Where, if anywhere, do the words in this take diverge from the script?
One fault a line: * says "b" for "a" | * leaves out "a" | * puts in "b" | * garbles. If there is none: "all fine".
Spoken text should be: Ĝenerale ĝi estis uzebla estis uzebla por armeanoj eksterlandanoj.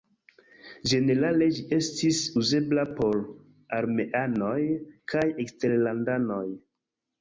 * leaves out "estis uzebla"
* puts in "kaj"